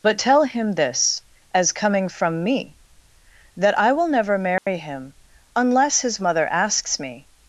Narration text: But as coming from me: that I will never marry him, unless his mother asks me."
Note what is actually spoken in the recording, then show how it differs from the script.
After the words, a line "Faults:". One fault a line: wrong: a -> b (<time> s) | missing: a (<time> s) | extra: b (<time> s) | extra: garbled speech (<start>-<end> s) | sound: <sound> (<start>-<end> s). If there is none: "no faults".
But tell him this, as coming from me: that I will never marry him, unless his mother asks me."
Faults:
extra: tell him this (0.2 s)
sound: dropout (4.6-4.7 s)